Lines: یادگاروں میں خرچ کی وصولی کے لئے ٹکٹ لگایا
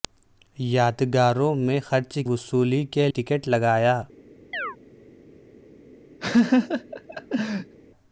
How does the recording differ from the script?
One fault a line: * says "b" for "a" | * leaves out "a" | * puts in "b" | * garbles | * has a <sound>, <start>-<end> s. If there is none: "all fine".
* leaves out "کی"
* leaves out "لئے"
* has a chirp, 4.5-4.8 s
* has a laugh, 6.2-7.8 s